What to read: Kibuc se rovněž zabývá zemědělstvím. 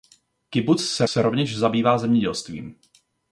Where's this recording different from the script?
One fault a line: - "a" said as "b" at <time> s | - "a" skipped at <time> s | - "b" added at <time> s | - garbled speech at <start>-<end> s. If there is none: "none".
- "se" added at 1.0 s